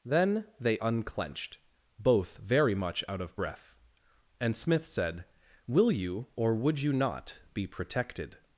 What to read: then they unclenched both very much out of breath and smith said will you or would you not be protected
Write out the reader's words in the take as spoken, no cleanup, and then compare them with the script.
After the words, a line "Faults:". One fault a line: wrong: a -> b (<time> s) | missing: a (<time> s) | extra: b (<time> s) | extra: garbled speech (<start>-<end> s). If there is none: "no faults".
then they unclenched both very much out of breath and smith said will you or would you not be protected
Faults:
no faults